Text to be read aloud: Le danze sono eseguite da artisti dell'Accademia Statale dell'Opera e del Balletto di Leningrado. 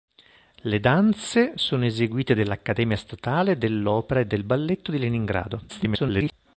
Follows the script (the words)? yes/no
no